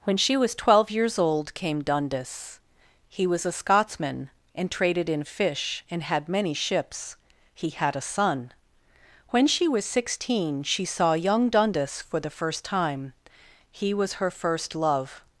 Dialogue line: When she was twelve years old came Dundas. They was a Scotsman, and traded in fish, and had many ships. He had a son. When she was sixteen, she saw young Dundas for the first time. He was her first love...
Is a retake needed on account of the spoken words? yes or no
yes